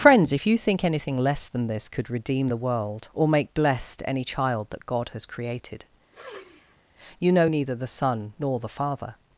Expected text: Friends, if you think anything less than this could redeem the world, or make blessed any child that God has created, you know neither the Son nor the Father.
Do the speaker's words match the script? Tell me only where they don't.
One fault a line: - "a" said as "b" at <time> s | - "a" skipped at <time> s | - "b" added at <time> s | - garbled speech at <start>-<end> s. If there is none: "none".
none